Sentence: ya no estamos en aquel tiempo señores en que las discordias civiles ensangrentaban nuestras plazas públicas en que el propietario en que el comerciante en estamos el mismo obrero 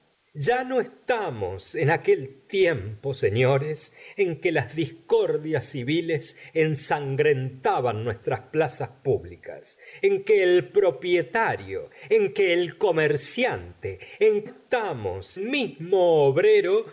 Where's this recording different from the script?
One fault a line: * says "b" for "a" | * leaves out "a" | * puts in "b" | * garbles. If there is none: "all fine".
all fine